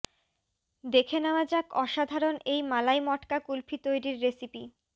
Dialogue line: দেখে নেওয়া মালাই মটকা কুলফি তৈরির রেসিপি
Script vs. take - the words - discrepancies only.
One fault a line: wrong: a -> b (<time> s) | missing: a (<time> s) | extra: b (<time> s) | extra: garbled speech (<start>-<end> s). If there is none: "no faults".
extra: যাক অসাধারণ এই (1.4 s)